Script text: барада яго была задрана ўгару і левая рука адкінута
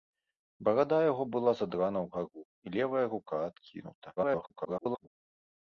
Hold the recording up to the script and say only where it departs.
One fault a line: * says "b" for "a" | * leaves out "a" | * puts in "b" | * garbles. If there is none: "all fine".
* garbles